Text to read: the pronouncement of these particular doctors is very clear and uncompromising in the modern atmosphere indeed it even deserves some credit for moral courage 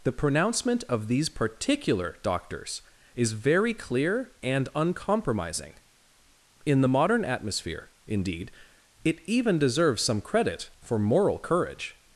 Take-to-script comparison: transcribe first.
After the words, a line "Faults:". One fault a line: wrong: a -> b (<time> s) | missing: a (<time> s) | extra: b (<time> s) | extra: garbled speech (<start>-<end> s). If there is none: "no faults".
the pronouncement of these particular doctors is very clear and uncompromising in the modern atmosphere indeed it even deserves some credit for moral courage
Faults:
no faults